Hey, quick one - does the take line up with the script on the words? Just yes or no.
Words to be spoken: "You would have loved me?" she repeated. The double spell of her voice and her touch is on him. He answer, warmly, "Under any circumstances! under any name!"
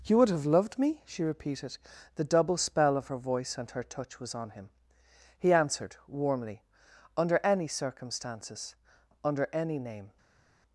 no